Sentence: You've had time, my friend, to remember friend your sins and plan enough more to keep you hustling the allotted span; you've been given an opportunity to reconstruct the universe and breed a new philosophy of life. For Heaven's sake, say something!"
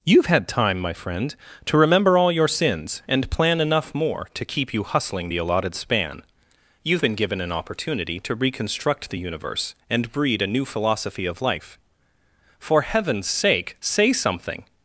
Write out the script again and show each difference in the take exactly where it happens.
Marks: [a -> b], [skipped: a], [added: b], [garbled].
You've had time, my friend, to remember [friend -> all] your sins and plan enough more to keep you hustling the allotted span; you've been given an opportunity to reconstruct the universe and breed a new philosophy of life. For Heaven's sake, say something!"